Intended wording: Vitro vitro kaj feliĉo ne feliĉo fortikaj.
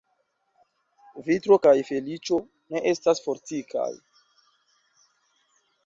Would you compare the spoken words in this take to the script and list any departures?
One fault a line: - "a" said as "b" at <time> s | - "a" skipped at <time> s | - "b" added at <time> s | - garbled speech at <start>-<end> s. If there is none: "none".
- "vitro" skipped at 1.6 s
- "feliĉo" said as "estas" at 3.0 s